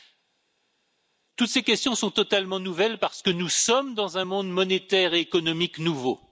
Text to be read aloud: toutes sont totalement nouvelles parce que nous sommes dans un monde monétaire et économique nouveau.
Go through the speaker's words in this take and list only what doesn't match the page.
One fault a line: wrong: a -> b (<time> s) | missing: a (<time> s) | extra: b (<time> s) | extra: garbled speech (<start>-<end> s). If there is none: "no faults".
extra: ces questions (1.5 s)